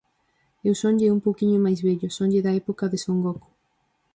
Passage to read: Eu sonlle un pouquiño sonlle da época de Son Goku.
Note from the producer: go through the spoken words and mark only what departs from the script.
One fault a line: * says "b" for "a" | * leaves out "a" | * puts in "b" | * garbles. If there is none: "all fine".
* puts in "máis vello"